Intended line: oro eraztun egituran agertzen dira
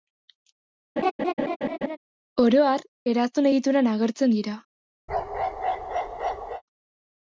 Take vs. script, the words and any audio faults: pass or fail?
fail